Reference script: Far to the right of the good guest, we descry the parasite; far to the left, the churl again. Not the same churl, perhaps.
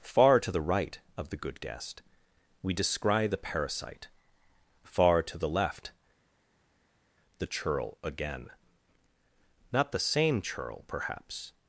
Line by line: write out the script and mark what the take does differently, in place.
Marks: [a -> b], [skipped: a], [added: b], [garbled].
Far to the right of the good guest, we descry the parasite; far to the left, the churl again. Not the same churl, perhaps.